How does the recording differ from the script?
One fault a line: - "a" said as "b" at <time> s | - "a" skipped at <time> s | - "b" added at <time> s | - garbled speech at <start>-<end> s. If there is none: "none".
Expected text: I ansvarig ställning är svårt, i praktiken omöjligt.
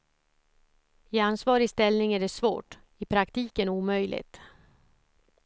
- "det" added at 2.2 s